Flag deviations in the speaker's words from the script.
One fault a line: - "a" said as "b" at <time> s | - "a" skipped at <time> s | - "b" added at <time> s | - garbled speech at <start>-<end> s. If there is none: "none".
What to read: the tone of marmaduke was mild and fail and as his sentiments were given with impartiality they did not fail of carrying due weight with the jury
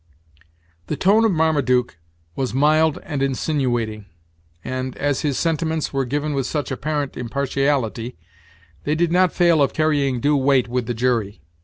- "fail" said as "insinuating" at 3.2 s
- "such apparent" added at 6.5 s